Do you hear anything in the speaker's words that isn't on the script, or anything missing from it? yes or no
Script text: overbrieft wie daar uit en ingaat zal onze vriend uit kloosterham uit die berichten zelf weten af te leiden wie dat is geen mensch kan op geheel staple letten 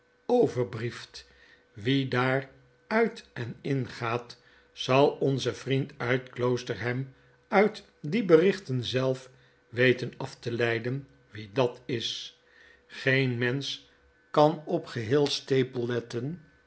no